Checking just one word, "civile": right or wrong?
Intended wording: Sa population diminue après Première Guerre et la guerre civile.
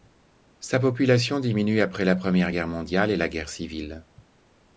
right